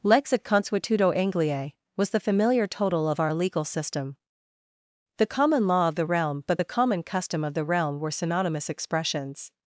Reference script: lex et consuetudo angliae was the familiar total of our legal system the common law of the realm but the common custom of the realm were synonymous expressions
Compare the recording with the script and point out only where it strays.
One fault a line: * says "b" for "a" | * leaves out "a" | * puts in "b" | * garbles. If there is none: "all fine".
all fine